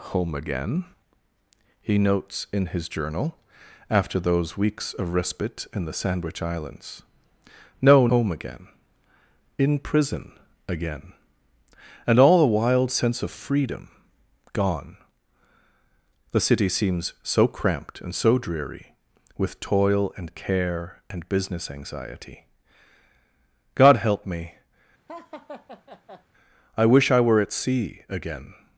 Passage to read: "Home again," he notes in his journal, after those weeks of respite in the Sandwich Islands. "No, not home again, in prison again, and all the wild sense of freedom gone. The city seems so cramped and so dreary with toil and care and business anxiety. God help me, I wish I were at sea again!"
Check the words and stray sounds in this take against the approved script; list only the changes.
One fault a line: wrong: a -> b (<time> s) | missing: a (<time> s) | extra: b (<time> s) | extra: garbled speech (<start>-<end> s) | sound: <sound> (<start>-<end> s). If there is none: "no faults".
missing: not (8.1 s)
sound: laugh (25.1-26.3 s)